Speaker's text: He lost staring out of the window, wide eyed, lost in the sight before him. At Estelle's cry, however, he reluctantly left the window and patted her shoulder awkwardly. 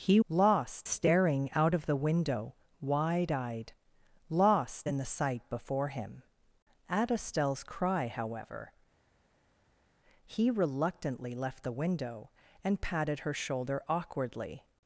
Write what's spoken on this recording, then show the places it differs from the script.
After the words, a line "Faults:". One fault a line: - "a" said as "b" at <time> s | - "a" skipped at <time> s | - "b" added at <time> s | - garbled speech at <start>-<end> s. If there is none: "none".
He lost staring out of the window, wide eyed, lost in the sight before him. At Estelle's cry, however, he reluctantly left the window and patted her shoulder awkwardly.
Faults:
none